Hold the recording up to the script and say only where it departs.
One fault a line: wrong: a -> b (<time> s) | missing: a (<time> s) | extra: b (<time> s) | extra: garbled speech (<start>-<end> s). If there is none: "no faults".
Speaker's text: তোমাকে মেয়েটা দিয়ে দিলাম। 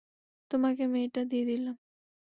no faults